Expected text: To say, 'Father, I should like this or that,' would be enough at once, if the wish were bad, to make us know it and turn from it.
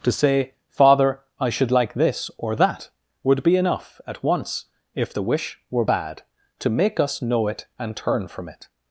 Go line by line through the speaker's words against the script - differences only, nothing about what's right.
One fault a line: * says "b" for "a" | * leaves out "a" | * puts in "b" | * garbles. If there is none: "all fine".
all fine